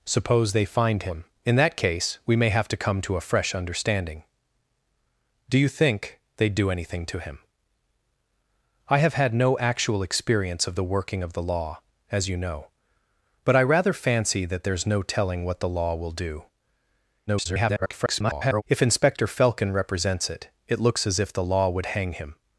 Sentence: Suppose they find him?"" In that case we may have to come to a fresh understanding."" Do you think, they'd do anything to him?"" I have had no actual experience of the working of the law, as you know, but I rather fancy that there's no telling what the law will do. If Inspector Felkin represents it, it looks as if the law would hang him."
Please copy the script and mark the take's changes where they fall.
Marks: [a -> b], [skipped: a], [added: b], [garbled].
Suppose they find him?"" In that case we may have to come to a fresh understanding."" Do you think, they'd do anything to him?"" I have had no actual experience of the working of the law, as you know, but I rather fancy that there's no telling what the law will do. [garbled] If Inspector Felkin represents it, it looks as if the law would hang him."